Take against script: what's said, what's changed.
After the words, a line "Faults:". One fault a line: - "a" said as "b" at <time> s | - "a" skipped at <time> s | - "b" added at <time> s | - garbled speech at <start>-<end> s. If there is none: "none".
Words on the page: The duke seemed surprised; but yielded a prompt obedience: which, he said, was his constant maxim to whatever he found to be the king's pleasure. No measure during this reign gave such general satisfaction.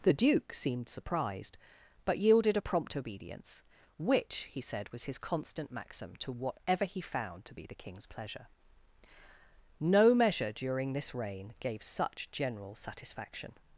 The duke seemed surprised; but yielded a prompt obedience: which, he said, was his constant maxim to whatever he found to be the king's pleasure. No measure during this reign gave such general satisfaction.
Faults:
none